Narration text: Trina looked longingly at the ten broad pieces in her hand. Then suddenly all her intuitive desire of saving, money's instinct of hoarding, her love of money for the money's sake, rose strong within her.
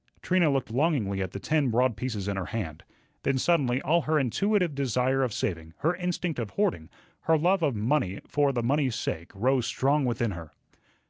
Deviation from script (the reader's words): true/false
true